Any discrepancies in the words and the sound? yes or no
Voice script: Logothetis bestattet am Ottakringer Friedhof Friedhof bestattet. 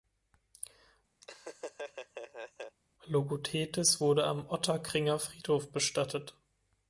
yes